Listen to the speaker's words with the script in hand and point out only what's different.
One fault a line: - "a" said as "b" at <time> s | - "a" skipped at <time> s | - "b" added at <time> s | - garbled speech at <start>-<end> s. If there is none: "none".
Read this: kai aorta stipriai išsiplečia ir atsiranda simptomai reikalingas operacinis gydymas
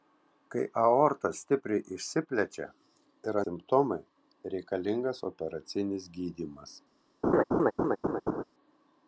- "atsiranda" skipped at 3.4 s